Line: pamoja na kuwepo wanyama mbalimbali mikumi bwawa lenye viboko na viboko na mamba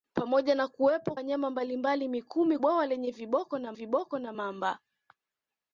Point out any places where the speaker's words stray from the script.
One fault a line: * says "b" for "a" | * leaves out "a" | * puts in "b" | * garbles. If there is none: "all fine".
all fine